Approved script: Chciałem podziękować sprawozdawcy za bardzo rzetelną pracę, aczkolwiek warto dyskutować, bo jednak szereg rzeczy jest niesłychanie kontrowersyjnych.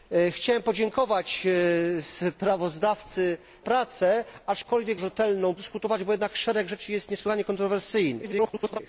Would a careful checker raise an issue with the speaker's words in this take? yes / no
yes